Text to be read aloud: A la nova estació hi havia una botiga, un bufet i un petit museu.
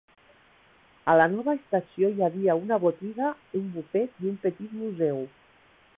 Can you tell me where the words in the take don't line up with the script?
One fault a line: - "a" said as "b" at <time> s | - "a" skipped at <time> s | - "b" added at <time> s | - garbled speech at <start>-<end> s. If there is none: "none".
none